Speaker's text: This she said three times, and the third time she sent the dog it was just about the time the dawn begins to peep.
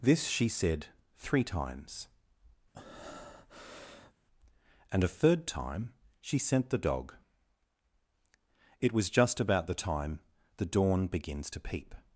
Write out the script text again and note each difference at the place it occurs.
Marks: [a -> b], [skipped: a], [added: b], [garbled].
This she said three times, and [the -> a] third time she sent the dog it was just about the time the dawn begins to peep.